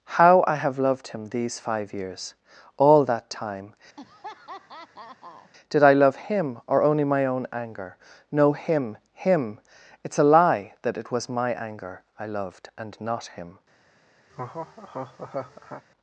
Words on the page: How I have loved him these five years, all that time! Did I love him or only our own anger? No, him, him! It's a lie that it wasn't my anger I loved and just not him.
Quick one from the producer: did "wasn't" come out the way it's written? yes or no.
no